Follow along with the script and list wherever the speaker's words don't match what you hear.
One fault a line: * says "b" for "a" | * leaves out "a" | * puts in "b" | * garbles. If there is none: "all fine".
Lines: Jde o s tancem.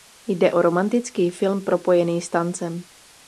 * puts in "romantický film propojený"